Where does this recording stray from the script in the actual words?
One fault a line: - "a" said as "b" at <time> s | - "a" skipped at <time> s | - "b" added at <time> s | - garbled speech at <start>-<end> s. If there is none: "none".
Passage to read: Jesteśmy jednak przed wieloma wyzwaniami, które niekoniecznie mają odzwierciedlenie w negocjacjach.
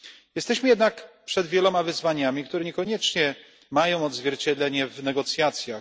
none